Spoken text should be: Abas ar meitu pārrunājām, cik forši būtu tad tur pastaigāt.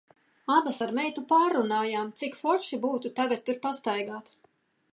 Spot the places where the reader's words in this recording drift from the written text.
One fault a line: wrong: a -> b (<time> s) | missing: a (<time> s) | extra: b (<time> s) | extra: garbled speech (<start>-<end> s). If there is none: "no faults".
wrong: tad -> tagad (3.2 s)